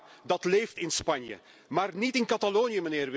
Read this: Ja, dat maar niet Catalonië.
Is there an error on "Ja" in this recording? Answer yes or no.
no